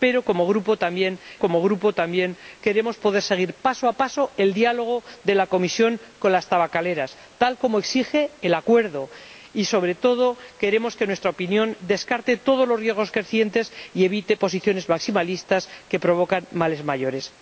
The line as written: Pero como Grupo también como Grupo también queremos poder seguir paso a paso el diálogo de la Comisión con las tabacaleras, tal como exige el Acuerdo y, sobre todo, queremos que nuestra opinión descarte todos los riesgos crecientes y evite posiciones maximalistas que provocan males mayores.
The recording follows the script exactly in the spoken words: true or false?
true